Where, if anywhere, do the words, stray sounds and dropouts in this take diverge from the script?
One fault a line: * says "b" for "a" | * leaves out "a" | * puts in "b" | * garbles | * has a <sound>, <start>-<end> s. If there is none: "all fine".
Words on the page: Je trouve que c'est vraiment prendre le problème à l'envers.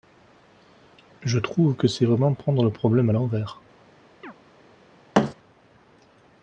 * has a chirp, 4.2-4.3 s
* has a thud, 5.1-5.3 s